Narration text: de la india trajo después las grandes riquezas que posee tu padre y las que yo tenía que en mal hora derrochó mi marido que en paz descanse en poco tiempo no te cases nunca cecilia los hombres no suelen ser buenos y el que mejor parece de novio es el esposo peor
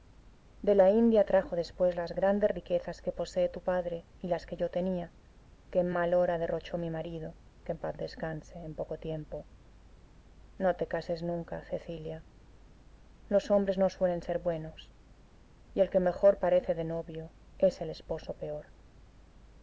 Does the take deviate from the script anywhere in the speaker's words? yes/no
no